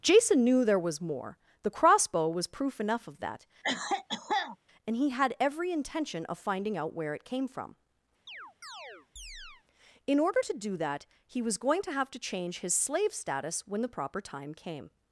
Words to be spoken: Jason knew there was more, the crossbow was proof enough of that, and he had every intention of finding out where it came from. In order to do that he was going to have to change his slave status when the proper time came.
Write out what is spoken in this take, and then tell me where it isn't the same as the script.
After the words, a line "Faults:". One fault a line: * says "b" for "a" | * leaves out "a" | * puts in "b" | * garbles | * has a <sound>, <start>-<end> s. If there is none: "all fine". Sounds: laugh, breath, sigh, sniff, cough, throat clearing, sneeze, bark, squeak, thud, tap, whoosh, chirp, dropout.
Jason knew there was more, the crossbow was proof enough of that, and he had every intention of finding out where it came from. In order to do that he was going to have to change his slave status when the proper time came.
Faults:
* has a cough, 3.6-4.6 s
* has a chirp, 8.3-9.6 s